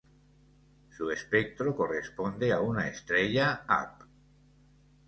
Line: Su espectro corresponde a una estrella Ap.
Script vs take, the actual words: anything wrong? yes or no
no